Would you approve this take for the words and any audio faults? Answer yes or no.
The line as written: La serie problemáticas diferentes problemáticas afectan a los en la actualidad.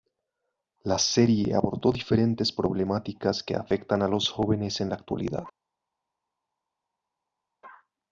no